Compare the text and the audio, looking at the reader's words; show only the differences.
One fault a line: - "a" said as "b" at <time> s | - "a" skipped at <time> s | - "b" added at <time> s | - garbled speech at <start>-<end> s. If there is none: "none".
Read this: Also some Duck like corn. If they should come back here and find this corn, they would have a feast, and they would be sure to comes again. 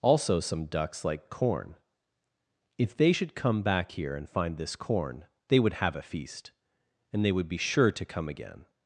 - "Duck" said as "Ducks" at 0.7 s
- "comes" said as "come" at 8.0 s